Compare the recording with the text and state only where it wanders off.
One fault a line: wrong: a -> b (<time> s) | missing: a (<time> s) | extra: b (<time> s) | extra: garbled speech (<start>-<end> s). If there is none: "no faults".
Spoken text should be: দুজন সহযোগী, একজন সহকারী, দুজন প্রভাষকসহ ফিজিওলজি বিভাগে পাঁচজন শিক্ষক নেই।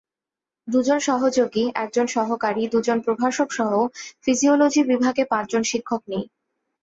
no faults